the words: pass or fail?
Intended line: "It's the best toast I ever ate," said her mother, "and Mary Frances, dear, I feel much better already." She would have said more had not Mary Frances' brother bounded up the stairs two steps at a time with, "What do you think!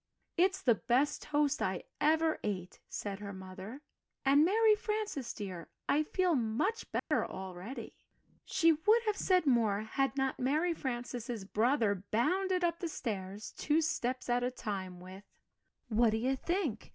pass